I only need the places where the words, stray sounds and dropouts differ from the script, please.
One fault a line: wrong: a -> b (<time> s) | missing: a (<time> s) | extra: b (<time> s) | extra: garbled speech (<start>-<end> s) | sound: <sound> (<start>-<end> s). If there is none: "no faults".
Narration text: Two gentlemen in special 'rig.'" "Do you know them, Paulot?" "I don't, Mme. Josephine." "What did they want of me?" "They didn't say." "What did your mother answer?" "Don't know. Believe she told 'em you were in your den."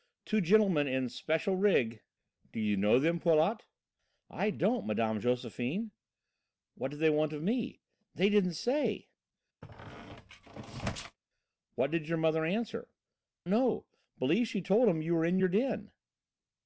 sound: squeak (9.6-11.2 s)
missing: Don't (12.9 s)